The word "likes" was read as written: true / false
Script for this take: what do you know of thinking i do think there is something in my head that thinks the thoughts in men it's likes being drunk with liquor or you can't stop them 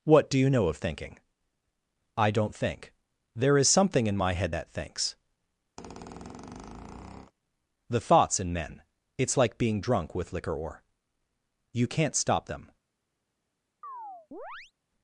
false